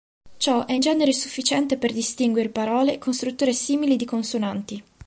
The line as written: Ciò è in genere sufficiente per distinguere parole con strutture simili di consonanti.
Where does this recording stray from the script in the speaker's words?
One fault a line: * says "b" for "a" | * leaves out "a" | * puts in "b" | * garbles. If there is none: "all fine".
all fine